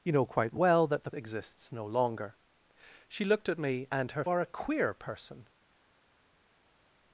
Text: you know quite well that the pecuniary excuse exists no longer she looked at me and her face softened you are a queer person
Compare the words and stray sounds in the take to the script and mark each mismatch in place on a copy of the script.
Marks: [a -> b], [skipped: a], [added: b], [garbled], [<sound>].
you know quite well that the [skipped: pecuniary excuse] exists no longer she looked at me and her [skipped: face softened you] are a queer person